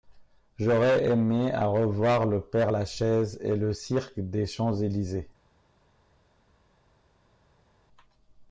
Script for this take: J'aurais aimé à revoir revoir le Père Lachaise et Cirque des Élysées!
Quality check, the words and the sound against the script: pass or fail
fail